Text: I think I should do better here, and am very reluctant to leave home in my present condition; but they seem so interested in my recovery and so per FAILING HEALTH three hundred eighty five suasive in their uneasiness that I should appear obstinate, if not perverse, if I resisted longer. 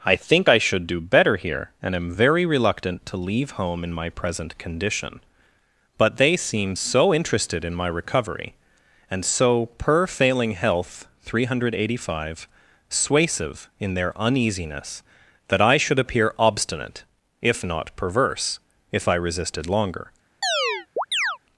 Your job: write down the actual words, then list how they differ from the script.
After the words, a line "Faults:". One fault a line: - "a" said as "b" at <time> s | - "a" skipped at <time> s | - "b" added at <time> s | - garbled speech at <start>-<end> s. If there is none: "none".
I think I should do better here, and am very reluctant to leave home in my present condition; but they seem so interested in my recovery and so per FAILING HEALTH three hundred eighty five suasive in their uneasiness that I should appear obstinate, if not perverse, if I resisted longer.
Faults:
none